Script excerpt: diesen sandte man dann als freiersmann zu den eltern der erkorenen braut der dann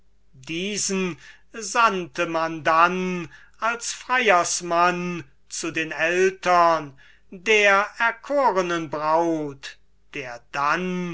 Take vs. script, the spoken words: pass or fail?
pass